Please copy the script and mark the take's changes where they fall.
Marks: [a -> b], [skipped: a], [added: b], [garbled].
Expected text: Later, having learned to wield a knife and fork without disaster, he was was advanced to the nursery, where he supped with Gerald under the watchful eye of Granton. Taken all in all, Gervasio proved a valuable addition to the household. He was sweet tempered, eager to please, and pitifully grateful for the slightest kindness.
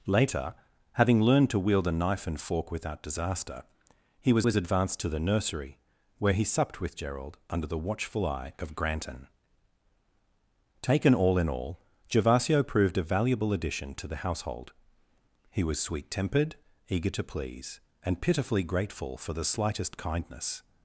Later, having learned to wield a knife and fork without disaster, he was was advanced to the nursery, where he supped with Gerald under the watchful eye of Granton. Taken all in all, Gervasio proved a valuable addition to the household. He was sweet tempered, eager to please, and pitifully grateful for the slightest kindness.